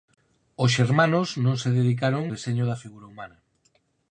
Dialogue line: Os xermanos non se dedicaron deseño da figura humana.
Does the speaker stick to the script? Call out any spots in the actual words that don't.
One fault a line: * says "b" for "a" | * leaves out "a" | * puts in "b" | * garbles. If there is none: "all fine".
all fine